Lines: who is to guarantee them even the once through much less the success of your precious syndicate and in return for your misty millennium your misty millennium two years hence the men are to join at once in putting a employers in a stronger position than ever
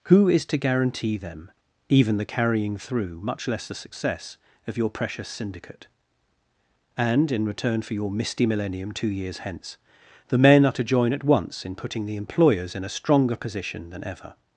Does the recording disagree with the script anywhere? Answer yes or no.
yes